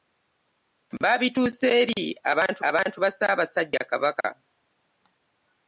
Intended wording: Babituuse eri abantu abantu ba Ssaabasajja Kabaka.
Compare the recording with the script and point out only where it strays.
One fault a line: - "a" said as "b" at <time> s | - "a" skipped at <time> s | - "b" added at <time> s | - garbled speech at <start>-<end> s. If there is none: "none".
none